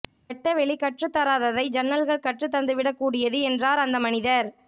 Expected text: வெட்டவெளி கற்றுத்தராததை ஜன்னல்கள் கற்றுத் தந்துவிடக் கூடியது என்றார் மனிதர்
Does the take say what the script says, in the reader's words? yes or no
no